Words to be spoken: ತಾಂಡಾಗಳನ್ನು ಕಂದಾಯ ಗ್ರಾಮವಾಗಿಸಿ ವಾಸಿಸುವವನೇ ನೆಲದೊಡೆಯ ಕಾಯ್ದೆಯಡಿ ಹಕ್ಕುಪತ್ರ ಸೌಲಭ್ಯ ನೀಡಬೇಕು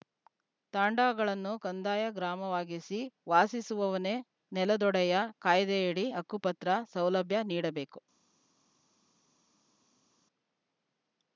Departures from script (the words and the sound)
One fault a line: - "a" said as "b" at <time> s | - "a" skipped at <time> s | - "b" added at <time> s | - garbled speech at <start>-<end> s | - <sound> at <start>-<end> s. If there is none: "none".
none